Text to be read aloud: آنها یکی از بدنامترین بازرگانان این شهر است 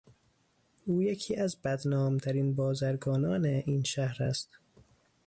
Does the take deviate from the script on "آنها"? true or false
true